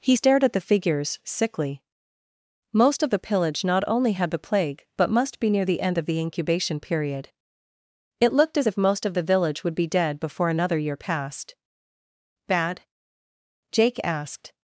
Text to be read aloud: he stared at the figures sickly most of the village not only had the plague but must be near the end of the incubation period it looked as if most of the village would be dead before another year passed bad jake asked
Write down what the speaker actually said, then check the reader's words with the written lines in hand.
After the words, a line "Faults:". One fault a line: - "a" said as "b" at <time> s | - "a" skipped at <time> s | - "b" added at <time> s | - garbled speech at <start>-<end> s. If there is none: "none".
he stared at the figures sickly most of the pillage not only had the plague but must be near the end of the incubation period it looked as if most of the village would be dead before another year passed bad jake asked
Faults:
- "village" said as "pillage" at 3.2 s